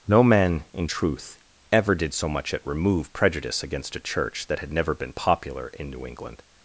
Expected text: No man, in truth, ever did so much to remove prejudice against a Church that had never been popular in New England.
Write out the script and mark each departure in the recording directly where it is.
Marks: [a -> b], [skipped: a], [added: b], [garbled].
No man, in truth, ever did so much [to -> at] remove prejudice against a Church that had never been popular in New England.